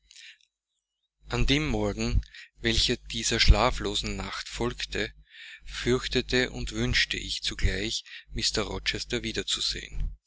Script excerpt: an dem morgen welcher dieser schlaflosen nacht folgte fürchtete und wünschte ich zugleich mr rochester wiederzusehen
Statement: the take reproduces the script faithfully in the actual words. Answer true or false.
true